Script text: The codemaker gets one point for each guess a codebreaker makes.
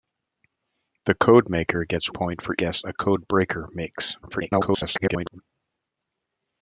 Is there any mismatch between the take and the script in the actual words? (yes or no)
yes